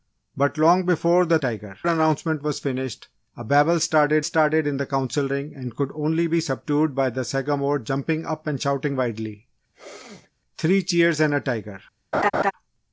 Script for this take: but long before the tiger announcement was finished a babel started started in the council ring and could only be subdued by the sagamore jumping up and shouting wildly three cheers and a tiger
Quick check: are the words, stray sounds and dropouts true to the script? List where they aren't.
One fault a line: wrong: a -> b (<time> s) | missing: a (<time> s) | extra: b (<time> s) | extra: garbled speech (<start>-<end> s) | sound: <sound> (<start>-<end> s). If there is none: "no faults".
sound: sneeze (9.7-10.3 s)
sound: laugh (12.1-12.5 s)